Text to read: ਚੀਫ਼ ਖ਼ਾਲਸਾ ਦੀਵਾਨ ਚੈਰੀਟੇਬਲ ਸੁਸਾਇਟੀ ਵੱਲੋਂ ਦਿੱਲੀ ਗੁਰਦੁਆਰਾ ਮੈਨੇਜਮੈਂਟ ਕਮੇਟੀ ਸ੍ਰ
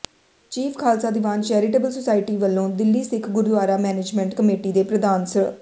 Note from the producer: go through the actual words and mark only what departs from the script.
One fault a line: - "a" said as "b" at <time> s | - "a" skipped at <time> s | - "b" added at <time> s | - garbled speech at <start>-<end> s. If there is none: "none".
- "ਸਿੱਖ" added at 3.0 s
- "ਦੇ ਪ੍ਰਧਾਨ" added at 4.7 s